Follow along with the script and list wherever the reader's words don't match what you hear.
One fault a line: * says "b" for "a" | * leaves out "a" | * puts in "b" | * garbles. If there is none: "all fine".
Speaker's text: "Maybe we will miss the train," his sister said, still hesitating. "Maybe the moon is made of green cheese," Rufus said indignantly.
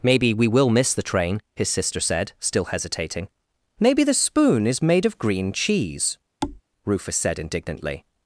* says "spoon" for "moon"